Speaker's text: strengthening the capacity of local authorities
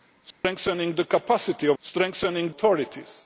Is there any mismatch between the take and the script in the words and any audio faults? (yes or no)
yes